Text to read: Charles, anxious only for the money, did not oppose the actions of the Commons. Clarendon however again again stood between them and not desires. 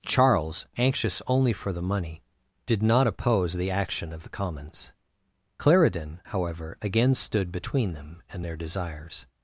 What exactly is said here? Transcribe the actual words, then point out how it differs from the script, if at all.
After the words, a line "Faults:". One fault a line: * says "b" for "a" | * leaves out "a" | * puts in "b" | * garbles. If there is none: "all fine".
Charles, anxious only for the money, did not oppose the action of the Commons. Clarendon however again stood between them and their desires.
Faults:
* says "action" for "actions"
* leaves out "again"
* says "their" for "not"